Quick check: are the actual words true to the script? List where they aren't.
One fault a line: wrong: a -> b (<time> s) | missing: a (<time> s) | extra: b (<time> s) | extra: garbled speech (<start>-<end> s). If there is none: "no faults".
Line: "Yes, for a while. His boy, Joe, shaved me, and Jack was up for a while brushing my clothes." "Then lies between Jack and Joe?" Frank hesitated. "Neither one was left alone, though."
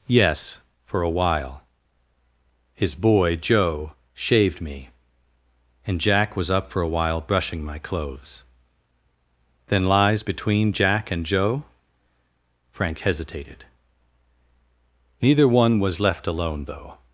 no faults